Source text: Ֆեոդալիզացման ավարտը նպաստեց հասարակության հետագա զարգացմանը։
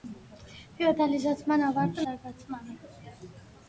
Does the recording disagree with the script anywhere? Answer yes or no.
yes